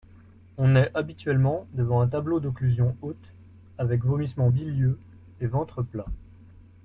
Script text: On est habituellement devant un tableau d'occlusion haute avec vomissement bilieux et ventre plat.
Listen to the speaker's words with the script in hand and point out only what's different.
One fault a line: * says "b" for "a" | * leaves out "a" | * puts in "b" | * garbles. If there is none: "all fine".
all fine